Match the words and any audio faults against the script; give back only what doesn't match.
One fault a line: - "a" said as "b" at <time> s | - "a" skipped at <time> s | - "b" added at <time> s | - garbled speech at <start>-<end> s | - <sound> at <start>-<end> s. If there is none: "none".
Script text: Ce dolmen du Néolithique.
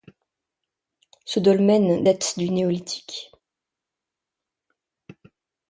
- "date" added at 2.0 s